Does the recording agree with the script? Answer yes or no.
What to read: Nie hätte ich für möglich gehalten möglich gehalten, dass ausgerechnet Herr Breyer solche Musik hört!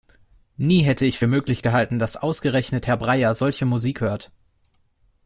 no